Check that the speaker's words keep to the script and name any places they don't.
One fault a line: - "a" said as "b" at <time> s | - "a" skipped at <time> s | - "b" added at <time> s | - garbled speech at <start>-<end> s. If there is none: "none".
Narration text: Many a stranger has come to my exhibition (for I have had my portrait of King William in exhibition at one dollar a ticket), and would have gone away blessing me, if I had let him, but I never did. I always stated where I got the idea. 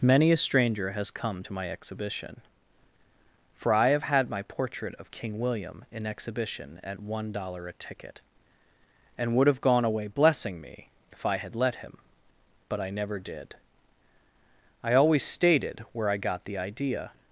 none